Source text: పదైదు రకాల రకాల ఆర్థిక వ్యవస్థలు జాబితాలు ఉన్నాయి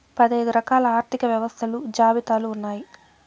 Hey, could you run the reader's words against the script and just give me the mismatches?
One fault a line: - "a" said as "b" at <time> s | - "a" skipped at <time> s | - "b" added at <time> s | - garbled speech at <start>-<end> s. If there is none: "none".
- "రకాల" skipped at 0.8 s